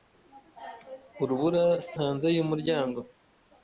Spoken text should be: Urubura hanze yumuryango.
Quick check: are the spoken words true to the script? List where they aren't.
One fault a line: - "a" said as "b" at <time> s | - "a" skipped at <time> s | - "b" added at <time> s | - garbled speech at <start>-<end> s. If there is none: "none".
none